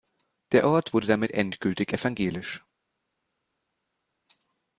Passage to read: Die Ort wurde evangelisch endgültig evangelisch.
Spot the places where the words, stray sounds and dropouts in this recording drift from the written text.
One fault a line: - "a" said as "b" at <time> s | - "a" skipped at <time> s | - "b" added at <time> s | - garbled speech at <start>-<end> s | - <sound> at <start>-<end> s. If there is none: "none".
- "Die" said as "Der" at 0.5 s
- "evangelisch" said as "damit" at 1.1 s